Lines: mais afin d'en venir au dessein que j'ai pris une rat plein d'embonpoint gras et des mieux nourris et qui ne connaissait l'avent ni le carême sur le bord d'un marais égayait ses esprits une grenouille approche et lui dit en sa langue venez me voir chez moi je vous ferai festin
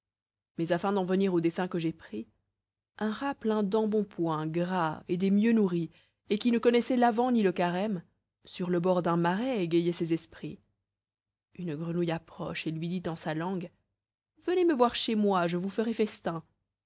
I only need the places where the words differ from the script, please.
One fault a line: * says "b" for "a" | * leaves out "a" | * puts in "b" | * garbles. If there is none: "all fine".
* says "un" for "une"